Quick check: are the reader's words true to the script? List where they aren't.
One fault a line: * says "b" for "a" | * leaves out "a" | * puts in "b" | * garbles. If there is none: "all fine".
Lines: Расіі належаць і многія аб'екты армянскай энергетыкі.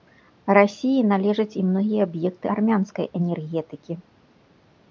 all fine